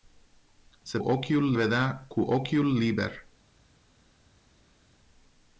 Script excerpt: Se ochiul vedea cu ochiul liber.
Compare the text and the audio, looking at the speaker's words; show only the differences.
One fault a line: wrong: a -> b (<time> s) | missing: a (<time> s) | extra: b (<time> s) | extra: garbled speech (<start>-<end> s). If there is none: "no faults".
no faults